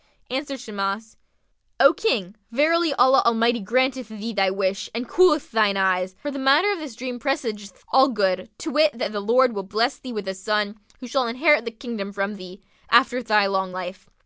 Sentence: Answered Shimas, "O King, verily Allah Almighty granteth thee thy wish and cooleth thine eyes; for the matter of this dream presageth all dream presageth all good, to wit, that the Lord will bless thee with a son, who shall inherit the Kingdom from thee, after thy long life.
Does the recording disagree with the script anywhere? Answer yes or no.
yes